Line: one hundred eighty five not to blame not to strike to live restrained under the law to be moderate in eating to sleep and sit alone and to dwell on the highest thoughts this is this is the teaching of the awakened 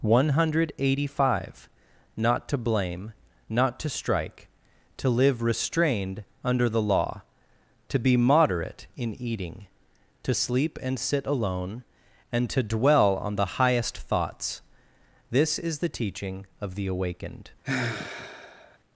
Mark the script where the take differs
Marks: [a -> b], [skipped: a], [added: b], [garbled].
one hundred eighty five not to blame not to strike to live restrained under the law to be moderate in eating to sleep and sit alone and to dwell on the highest thoughts this is [skipped: this is] the teaching of the awakened